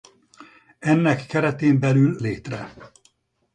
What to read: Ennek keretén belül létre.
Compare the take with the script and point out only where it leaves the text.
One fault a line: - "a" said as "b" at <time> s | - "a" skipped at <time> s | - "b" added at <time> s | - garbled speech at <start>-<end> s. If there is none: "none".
none